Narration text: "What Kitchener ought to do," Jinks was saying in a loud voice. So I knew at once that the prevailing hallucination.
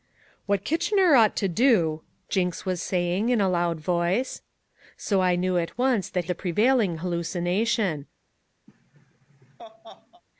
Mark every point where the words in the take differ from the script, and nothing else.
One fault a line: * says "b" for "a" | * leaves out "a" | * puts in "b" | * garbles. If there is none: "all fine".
all fine